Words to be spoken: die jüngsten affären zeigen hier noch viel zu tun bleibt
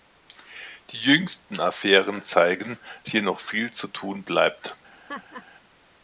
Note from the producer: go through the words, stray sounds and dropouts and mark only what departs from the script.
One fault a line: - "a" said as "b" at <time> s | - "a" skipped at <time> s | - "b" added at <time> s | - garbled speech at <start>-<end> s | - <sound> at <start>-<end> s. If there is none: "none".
- laugh at 4.9-5.4 s